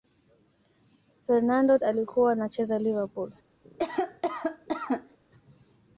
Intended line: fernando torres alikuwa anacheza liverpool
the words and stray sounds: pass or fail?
fail